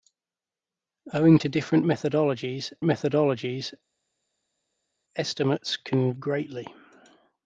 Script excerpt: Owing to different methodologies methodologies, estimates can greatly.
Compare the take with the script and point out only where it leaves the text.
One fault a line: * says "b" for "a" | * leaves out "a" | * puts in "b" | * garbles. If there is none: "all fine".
all fine